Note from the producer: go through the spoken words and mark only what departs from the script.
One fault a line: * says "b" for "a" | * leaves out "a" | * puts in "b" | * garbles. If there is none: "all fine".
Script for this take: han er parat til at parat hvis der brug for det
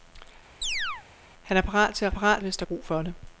all fine